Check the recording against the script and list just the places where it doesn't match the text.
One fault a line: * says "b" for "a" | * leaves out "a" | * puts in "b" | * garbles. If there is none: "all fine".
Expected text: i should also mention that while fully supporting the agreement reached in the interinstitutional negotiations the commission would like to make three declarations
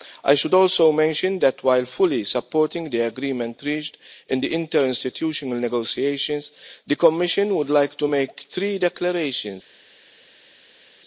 all fine